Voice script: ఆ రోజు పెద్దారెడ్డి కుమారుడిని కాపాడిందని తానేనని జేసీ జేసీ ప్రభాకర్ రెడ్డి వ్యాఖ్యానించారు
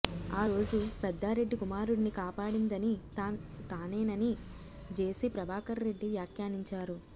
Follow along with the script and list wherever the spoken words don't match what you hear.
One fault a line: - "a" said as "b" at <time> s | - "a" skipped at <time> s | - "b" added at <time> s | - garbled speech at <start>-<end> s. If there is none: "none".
- "జేసీ" skipped at 5.3 s